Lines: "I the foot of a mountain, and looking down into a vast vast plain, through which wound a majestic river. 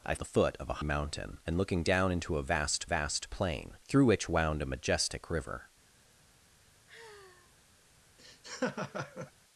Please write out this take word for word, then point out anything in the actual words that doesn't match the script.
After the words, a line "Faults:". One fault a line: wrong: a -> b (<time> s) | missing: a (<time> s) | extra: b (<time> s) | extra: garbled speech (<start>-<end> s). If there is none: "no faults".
"I the foot of a mountain, and looking down into a vast vast plain, through which wound a majestic river.
Faults:
no faults